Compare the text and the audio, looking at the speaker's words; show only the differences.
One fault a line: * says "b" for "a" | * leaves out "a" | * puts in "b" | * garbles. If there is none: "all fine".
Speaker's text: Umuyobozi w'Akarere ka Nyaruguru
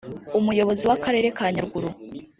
all fine